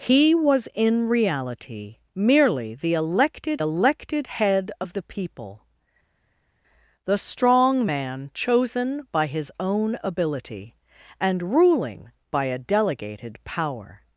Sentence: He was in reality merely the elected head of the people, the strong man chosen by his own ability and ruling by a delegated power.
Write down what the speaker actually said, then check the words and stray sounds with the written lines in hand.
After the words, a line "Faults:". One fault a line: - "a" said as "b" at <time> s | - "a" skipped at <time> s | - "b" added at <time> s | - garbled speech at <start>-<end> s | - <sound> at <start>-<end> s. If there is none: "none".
He was in reality merely the elected elected head of the people, the strong man chosen by his own ability and ruling by a delegated power.
Faults:
- "elected" added at 3.6 s